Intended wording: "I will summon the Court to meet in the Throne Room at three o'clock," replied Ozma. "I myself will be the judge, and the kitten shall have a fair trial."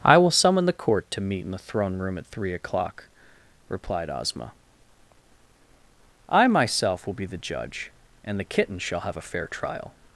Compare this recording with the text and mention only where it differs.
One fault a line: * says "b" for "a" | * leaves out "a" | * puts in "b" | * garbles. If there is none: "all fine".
all fine